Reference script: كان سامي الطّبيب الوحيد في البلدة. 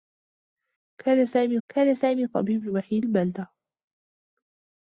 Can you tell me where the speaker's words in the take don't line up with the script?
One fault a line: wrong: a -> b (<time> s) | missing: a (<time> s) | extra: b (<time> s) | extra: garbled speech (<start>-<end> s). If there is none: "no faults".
extra: كان سامي (1.7 s)
missing: في (3.0 s)